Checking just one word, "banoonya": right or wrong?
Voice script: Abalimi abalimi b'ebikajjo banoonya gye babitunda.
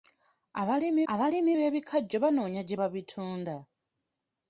right